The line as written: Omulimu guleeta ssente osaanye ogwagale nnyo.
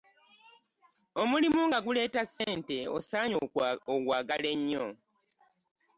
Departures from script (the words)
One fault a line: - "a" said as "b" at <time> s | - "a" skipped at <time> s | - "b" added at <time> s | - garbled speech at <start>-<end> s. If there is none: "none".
- "nga" added at 1.7 s